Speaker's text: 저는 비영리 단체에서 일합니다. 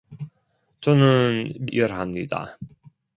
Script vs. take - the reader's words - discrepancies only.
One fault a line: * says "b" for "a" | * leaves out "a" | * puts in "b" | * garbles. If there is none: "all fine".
* leaves out "비영리 단체에서"